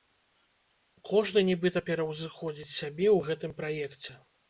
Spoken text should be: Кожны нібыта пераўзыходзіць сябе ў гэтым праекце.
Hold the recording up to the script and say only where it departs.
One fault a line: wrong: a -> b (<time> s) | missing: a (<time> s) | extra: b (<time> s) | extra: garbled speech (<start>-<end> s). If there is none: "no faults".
no faults